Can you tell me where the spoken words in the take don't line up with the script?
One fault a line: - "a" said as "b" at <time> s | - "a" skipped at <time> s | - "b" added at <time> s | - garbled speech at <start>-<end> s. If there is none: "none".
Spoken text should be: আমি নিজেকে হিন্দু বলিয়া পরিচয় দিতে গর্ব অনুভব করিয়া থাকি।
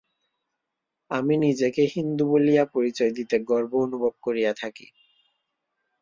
none